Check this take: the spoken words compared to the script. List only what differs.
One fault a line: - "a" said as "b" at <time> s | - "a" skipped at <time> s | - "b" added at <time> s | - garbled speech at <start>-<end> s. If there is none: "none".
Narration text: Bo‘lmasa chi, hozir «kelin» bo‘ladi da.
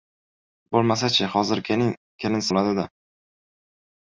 none